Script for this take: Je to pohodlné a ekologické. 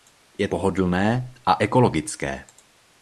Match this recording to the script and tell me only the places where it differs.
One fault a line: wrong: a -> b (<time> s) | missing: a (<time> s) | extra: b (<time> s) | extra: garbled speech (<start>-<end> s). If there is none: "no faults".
missing: to (0.5 s)